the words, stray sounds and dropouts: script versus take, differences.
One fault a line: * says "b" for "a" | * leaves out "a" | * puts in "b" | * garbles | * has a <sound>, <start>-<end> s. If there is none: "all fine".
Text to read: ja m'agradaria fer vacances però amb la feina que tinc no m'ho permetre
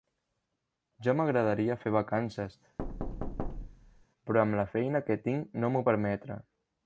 * has a thud, 2.8-4.1 s